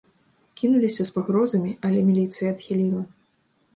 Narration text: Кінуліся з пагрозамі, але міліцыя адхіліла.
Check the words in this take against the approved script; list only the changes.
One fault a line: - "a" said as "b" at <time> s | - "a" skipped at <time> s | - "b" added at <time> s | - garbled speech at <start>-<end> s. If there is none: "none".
none